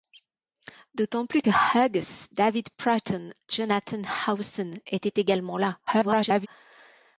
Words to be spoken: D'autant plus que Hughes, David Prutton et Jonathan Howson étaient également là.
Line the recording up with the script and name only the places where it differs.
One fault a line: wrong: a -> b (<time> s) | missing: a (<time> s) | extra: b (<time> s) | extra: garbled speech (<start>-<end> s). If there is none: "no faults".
missing: et (3.3 s)
extra: garbled speech (5.9-6.5 s)